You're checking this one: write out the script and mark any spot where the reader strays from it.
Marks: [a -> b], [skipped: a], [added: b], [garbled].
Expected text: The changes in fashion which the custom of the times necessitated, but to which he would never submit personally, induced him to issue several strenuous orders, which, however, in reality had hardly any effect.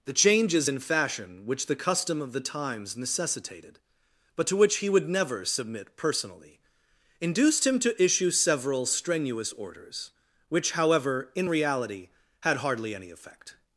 The changes in fashion which the custom of the times necessitated, but to which he would never submit personally, induced him to issue several strenuous orders, which, however, in reality had hardly any effect.